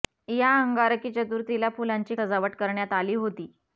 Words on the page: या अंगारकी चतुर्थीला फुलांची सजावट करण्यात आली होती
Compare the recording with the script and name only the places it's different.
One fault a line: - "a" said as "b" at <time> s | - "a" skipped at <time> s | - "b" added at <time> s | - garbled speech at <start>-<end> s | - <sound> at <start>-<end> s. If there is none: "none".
none